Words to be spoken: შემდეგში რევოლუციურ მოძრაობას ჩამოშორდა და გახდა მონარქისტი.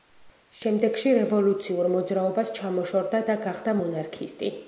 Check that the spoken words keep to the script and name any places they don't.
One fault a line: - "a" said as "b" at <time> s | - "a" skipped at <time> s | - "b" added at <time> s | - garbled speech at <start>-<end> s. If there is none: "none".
none